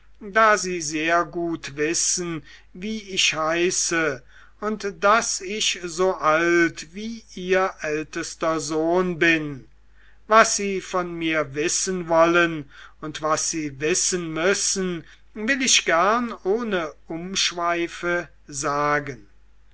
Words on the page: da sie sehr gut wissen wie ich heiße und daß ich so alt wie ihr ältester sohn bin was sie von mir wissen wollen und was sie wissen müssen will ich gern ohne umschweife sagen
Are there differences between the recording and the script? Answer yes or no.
no